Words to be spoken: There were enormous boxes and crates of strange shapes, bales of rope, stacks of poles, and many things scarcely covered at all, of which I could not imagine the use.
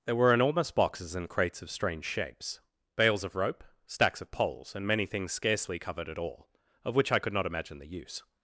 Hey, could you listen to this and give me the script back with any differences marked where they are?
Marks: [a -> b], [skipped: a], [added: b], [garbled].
There were enormous boxes and crates of strange shapes, bales of rope, stacks of poles, and many things scarcely covered at all, of which I could not imagine the use.